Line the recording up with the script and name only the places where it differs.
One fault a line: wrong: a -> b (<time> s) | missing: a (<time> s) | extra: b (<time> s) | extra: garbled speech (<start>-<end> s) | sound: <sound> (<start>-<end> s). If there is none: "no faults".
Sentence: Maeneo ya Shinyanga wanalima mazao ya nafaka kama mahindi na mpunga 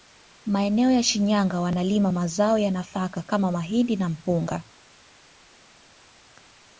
no faults